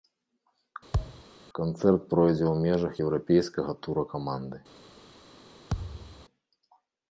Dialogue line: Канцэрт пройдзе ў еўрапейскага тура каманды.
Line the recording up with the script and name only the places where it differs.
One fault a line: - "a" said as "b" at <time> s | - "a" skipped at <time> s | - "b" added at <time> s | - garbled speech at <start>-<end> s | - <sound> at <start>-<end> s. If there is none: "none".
- thud at 0.9-1.2 s
- "межах" added at 2.7 s
- thud at 5.7-6.3 s